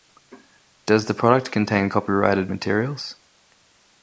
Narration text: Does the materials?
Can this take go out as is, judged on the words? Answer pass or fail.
fail